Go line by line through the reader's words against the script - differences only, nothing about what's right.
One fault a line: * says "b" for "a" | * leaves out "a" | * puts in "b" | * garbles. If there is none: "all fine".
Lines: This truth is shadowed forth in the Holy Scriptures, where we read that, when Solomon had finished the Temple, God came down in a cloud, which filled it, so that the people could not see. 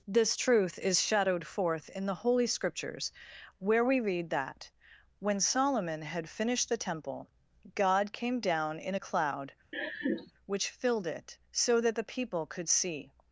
* leaves out "not"